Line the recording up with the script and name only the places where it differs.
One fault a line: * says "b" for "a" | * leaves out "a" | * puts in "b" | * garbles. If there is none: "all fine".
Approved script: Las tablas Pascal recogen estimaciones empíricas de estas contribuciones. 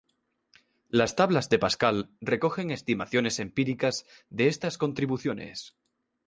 * puts in "de"